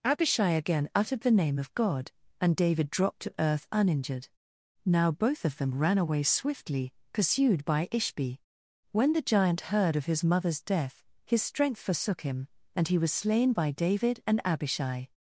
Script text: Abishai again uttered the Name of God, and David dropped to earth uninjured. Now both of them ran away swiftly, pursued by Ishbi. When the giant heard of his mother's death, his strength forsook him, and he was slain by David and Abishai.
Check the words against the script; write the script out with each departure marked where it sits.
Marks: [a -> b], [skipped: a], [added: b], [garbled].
Abishai again uttered the Name of God, and David dropped to earth uninjured. Now both of them ran away swiftly, pursued by Ishbi. When the giant heard of his mother's death, his strength forsook him, and he was slain by David and Abishai.